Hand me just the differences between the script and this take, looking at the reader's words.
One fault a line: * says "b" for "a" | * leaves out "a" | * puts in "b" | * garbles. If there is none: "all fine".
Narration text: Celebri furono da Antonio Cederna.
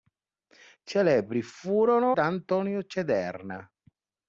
all fine